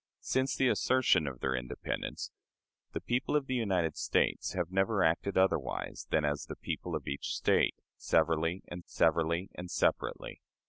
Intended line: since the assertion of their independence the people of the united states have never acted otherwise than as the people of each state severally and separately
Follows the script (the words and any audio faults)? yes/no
no